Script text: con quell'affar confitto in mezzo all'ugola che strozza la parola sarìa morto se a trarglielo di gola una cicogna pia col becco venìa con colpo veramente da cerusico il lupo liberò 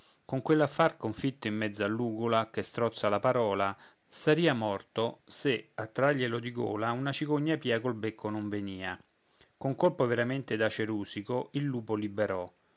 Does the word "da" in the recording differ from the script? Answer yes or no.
no